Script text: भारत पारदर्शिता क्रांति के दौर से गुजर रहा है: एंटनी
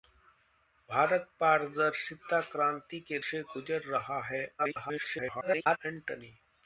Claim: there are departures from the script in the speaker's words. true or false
true